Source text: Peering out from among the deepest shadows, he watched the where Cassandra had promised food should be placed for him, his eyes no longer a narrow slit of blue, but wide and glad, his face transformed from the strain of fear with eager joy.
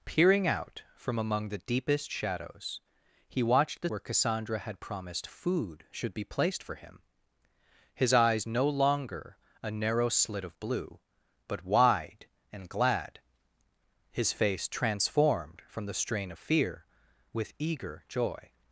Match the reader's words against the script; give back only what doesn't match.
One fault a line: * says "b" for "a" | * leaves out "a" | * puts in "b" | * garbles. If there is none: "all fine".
all fine